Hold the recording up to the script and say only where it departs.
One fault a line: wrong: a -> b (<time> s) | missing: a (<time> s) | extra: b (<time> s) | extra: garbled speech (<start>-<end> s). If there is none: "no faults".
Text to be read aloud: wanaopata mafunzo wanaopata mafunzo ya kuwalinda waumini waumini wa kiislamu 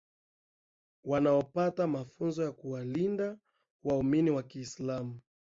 missing: wanaopata mafunzo (2.4 s)
missing: waumini (4.3 s)